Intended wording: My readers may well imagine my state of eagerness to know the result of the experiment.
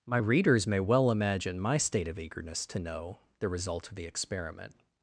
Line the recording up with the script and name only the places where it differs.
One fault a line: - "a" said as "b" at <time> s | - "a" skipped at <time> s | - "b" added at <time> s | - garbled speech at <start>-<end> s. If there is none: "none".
none